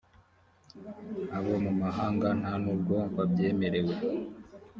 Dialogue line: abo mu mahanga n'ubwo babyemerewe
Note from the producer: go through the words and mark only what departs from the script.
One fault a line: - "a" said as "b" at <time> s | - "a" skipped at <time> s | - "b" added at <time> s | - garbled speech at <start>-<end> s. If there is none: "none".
- "nta" added at 2.4 s